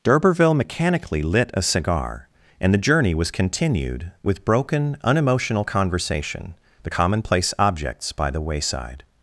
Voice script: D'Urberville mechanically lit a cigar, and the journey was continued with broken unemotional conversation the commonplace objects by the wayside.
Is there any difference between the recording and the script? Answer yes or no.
no